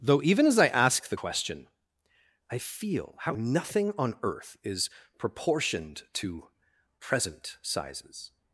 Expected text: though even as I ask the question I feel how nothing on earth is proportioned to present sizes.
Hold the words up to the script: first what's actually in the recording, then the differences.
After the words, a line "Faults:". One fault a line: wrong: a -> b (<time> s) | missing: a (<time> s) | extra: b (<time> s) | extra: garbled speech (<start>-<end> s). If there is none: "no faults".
though even as I ask the question I feel how nothing on earth is proportioned to present sizes.
Faults:
no faults